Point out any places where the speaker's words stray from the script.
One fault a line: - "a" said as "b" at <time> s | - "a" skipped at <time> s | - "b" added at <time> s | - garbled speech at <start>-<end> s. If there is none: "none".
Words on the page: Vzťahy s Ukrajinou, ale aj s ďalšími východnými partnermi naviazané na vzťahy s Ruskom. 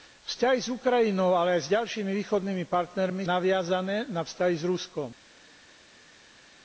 none